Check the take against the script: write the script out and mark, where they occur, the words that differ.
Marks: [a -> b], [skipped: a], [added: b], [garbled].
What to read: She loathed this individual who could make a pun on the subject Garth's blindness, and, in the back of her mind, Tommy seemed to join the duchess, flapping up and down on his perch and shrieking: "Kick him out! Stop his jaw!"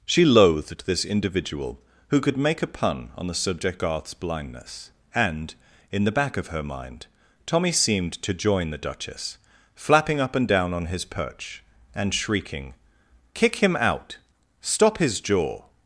She loathed this individual who could make a pun on the subject Garth's blindness, and, in the back of her mind, Tommy seemed to join the duchess, flapping up and down on his perch and shrieking: "Kick him out! Stop his jaw!"